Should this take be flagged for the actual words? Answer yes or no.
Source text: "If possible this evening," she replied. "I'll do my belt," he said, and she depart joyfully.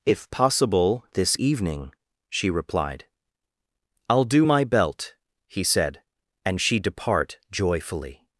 no